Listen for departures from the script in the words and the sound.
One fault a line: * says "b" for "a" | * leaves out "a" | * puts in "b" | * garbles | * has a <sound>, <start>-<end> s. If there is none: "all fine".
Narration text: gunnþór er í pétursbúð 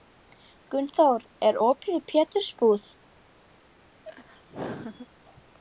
* puts in "opið"
* has a laugh, 4.0-5.1 s